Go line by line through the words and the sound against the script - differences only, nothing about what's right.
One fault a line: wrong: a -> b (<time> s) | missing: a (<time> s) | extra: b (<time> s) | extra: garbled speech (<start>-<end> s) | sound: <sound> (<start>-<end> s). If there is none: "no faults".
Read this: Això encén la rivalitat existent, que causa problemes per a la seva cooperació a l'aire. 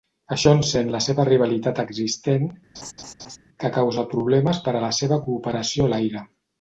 extra: seva (1.1 s)
sound: laugh (2.7-3.4 s)